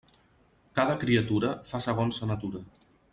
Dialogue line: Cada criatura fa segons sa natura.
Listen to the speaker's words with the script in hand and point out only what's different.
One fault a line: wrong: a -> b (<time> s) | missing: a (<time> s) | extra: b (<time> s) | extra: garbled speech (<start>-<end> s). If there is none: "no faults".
no faults